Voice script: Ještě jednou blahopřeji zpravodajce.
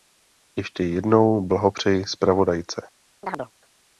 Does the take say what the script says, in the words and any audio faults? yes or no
no